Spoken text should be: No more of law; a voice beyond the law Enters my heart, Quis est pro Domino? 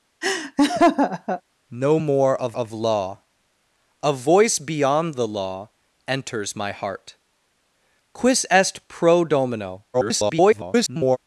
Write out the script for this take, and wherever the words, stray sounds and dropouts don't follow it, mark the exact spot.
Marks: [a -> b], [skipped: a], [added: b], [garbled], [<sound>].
[laugh] No more of [added: of] law; a voice beyond the law Enters my heart, Quis est pro Domino? [garbled]